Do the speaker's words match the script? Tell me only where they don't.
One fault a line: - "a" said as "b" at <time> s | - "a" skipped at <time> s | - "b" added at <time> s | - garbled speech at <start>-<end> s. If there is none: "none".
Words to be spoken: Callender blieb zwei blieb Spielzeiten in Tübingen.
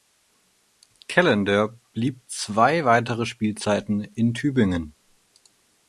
- "blieb" said as "weitere" at 2.9 s